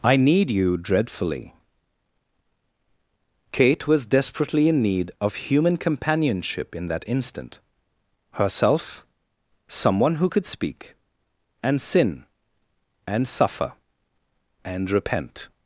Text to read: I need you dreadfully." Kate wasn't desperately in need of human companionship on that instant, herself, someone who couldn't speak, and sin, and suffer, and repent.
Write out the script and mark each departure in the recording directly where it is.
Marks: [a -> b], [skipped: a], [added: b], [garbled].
I need you dreadfully." Kate [wasn't -> was] desperately in need of human companionship [on -> in] that instant, herself, someone who [couldn't -> could] speak, and sin, and suffer, and repent.